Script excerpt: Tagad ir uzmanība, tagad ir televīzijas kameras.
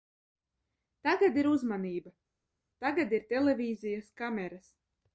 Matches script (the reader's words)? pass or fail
pass